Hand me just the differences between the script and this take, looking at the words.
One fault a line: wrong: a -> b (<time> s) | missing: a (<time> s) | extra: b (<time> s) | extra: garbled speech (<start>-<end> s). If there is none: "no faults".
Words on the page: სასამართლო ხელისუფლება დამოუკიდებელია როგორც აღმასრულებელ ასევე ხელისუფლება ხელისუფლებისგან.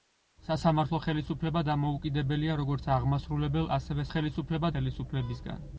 no faults